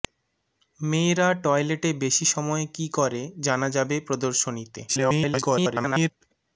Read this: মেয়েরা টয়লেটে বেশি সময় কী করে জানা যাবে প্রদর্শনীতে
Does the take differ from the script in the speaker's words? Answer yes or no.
yes